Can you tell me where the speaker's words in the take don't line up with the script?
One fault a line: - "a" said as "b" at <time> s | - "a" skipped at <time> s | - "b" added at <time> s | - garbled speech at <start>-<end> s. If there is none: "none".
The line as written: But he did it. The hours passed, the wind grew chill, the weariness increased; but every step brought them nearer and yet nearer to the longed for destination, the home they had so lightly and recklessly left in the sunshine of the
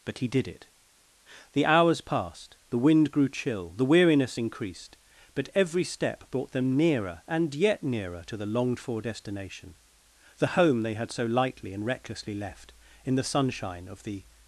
none